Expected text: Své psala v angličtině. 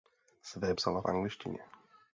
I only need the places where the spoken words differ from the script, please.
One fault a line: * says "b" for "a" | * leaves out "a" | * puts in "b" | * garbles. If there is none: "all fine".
all fine